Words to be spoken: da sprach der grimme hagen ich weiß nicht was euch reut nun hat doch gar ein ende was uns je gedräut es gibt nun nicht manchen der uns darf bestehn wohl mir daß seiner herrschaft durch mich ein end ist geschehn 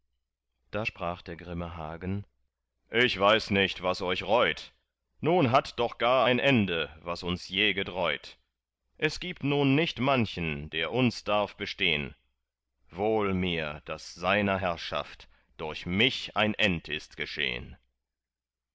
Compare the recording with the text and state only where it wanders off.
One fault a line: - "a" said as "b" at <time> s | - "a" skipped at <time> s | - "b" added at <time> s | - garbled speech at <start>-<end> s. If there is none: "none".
none